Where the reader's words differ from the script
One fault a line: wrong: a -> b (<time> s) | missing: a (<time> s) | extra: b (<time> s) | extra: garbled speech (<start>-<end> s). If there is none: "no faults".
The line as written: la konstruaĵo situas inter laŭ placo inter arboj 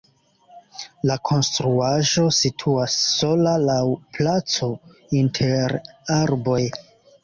wrong: inter -> sola (3.1 s)